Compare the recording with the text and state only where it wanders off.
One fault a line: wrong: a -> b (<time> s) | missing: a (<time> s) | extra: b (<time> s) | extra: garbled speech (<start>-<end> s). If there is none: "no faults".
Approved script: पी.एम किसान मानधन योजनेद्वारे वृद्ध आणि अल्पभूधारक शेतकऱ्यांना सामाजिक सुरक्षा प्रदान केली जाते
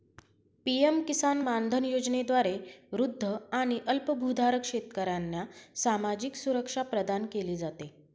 no faults